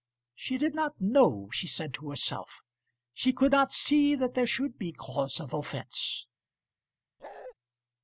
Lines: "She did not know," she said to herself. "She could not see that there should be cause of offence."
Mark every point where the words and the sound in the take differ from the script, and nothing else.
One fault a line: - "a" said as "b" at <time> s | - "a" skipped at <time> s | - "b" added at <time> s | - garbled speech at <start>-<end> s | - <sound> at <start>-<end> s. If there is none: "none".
- bark at 7.2-7.5 s